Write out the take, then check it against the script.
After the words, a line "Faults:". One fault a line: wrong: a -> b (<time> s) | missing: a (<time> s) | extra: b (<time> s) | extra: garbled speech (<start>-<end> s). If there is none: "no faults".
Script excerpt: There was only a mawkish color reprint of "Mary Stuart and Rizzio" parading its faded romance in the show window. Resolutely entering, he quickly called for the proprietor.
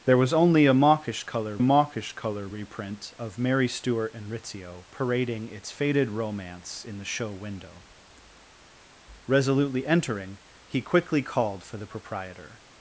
There was only a mawkish color mawkish color reprint of "Mary Stuart and Rizzio" parading its faded romance in the show window. Resolutely entering, he quickly called for the proprietor.
Faults:
extra: mawkish color (1.6 s)